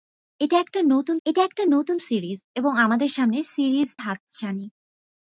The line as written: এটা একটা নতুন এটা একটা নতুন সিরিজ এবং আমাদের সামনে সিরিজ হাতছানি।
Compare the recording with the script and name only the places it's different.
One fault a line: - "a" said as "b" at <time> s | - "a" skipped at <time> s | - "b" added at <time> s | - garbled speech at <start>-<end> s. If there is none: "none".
none